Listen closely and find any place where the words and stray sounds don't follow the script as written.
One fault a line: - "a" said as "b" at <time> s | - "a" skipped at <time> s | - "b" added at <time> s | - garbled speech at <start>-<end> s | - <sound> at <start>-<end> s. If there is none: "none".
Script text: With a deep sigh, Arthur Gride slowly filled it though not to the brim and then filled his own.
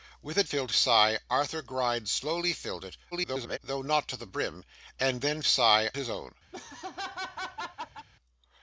- "deep" said as "filled" at 0.5 s
- garbled speech at 3.1-3.6 s
- "filled" said as "sigh" at 5.5 s
- laugh at 6.5-8.1 s